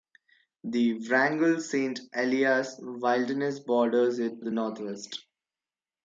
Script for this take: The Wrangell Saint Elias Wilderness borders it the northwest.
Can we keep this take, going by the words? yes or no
yes